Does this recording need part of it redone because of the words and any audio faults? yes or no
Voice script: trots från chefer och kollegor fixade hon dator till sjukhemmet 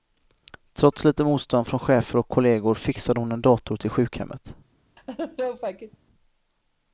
yes